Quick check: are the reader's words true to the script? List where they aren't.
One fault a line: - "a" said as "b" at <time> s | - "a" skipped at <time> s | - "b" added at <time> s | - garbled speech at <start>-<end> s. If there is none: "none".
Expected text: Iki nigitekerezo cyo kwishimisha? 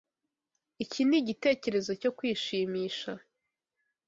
none